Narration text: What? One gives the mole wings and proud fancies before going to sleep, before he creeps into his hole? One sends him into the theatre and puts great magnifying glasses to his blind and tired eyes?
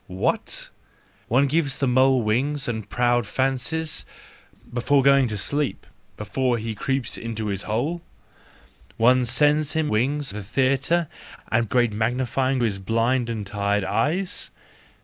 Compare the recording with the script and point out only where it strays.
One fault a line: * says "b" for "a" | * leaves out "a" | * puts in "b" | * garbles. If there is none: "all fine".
* says "wings" for "into"
* leaves out "puts"
* leaves out "glasses to"